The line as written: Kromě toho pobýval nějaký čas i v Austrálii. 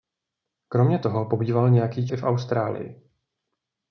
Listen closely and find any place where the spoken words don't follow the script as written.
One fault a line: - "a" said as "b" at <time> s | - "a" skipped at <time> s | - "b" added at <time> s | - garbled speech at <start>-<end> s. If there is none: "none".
- "čas" skipped at 2.1 s